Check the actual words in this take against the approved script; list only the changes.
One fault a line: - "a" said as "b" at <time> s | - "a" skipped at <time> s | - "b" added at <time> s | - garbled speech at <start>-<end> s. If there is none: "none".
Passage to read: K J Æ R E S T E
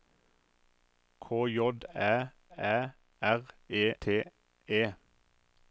- "Æ" added at 2.6 s
- "S" skipped at 3.9 s